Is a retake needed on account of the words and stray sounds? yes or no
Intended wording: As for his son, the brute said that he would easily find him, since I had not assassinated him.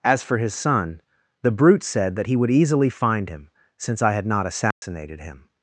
yes